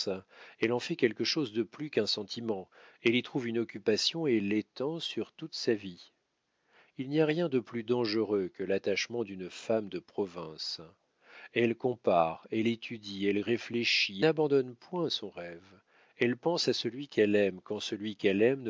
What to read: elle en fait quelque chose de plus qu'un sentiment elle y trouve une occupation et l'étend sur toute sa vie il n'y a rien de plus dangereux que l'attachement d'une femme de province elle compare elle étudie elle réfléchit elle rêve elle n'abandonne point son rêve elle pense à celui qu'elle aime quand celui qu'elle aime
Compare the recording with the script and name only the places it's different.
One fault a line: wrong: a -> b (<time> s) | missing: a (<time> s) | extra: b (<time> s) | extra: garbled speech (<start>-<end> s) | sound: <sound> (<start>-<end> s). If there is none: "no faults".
missing: elle rêve elle (14.2 s)